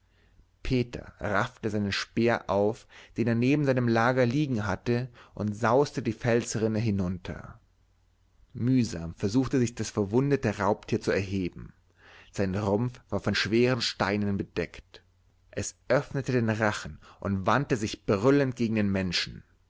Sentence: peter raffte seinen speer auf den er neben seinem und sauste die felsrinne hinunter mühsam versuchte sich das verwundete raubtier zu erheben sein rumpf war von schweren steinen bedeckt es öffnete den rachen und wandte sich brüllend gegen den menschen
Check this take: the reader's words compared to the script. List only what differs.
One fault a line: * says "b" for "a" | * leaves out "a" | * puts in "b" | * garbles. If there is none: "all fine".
* puts in "lager liegen hatte"